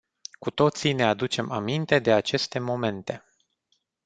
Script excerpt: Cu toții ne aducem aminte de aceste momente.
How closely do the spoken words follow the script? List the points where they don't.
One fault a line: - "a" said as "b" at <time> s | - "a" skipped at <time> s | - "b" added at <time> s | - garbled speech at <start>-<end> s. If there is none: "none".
none